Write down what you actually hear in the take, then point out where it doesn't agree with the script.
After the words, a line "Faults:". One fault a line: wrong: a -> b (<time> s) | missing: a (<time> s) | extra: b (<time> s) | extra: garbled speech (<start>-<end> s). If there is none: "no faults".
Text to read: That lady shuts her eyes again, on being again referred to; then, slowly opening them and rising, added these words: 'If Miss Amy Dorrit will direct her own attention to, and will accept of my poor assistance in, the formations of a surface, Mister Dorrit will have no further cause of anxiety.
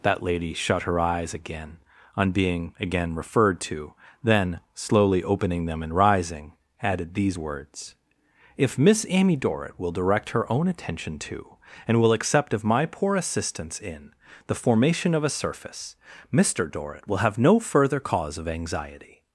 That lady shut her eyes again, on being again referred to; then, slowly opening them and rising, added these words: 'If Miss Amy Dorrit will direct her own attention to, and will accept of my poor assistance in, the formation of a surface, Mister Dorrit will have no further cause of anxiety.
Faults:
wrong: shuts -> shut (0.5 s)
wrong: formations -> formation (14.5 s)